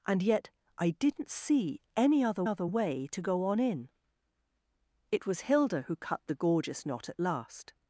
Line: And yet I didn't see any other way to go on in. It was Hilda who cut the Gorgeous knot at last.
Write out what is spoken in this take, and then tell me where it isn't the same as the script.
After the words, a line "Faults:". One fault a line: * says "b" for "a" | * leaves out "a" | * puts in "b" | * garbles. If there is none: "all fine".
And yet I didn't see any other other way to go on in. It was Hilda who cut the Gorgeous knot at last.
Faults:
* puts in "other"